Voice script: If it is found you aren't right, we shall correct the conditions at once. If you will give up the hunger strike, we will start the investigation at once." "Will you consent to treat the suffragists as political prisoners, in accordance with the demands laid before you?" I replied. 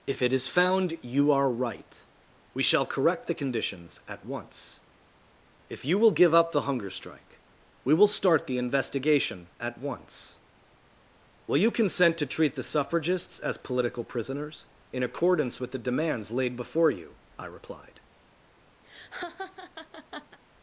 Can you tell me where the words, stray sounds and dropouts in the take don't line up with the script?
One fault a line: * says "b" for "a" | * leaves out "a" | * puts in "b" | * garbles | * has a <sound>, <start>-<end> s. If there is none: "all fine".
* says "are" for "aren't"
* has a laugh, 18.8-20.4 s